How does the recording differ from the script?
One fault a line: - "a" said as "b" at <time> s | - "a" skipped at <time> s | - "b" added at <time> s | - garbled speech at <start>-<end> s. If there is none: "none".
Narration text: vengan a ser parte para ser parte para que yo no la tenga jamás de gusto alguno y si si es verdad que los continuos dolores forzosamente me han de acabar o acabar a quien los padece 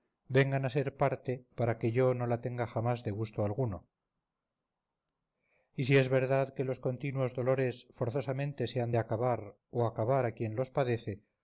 - "ser parte para" skipped at 1.8 s
- "si" skipped at 6.0 s
- "me" said as "se" at 8.7 s